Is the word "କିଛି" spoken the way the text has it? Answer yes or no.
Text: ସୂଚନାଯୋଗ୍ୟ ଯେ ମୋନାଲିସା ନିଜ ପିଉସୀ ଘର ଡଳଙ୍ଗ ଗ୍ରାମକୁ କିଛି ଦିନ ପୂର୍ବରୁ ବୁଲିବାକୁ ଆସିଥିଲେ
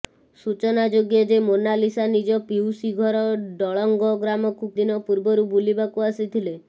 no